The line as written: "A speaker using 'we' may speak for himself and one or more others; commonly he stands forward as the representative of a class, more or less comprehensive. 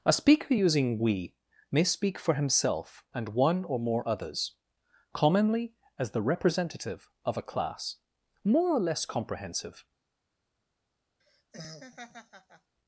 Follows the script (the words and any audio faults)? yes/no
no